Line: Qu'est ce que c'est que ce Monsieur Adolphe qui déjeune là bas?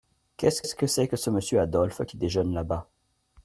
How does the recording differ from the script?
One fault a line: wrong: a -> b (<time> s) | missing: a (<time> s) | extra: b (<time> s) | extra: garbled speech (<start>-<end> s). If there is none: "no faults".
extra: ce (0.6 s)